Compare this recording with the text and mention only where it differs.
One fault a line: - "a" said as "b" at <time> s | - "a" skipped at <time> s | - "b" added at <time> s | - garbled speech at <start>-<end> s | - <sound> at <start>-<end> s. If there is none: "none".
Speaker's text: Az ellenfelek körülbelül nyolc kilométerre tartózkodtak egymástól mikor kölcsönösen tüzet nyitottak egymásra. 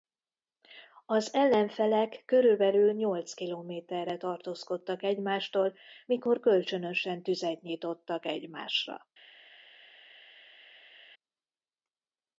none